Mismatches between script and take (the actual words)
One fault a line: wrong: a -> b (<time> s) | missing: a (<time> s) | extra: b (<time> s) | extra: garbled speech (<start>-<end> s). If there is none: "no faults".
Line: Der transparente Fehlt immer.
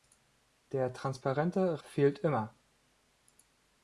no faults